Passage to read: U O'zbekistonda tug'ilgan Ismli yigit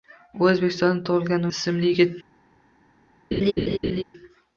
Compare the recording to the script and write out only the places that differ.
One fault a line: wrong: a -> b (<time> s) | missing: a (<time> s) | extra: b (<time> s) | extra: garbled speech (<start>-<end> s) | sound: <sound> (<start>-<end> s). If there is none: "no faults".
sound: laugh (3.3-4.0 s)